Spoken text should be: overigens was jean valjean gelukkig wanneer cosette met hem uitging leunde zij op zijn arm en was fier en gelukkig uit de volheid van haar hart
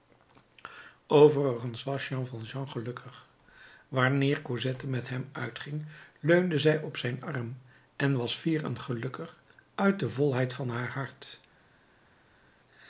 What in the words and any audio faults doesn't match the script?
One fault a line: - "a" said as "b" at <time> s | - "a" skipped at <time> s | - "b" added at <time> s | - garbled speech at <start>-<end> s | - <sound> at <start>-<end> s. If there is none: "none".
none